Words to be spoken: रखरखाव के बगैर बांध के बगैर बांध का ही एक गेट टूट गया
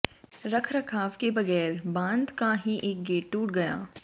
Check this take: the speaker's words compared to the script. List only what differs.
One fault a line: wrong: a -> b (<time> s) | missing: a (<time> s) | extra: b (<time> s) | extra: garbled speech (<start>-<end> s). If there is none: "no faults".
missing: के बगैर बांध (2.3 s)